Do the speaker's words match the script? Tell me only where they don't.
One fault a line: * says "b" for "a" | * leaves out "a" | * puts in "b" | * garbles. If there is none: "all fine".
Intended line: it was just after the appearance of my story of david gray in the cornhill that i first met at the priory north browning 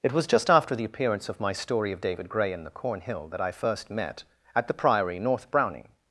all fine